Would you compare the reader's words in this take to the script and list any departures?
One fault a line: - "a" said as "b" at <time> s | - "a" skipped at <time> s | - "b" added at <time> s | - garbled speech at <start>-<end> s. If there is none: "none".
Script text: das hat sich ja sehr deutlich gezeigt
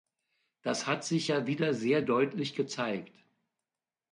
- "wieder" added at 1.5 s